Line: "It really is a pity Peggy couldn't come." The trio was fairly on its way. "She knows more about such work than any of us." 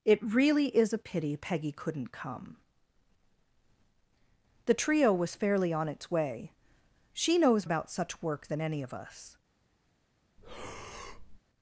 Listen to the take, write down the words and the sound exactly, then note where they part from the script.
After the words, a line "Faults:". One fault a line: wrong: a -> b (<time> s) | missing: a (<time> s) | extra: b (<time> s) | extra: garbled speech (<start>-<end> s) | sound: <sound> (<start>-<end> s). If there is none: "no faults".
"It really is a pity Peggy couldn't come." The trio was fairly on its way. "She knows about such work than any of us."
Faults:
missing: more (7.7 s)
sound: breath (10.4-11.4 s)